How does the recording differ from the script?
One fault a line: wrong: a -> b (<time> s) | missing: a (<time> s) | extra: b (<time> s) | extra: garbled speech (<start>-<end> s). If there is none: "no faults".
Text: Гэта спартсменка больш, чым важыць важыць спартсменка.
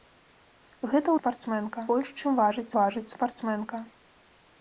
no faults